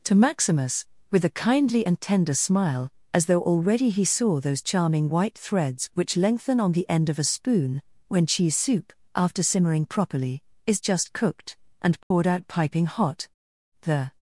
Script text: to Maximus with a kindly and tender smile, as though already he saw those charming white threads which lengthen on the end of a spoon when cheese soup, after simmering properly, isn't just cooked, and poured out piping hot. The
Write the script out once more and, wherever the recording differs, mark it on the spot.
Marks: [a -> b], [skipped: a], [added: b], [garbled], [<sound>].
to Maximus with a kindly and tender smile, as though already he saw those charming white threads which lengthen on the end of a spoon when cheese soup, after simmering properly, [isn't -> is] just cooked, and poured [dropout] out piping hot. The